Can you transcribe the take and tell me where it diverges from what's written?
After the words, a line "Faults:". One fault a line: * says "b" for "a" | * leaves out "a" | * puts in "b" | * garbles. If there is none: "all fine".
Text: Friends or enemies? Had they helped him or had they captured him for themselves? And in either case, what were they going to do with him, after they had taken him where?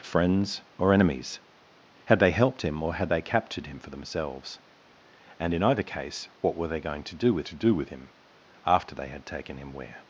Friends or enemies? Had they helped him or had they captured him for themselves? And in either case, what were they going to do with to do with him, after they had taken him where?
Faults:
* puts in "to do with"